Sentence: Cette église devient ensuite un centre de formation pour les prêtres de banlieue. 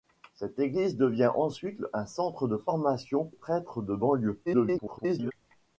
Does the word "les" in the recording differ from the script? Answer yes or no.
yes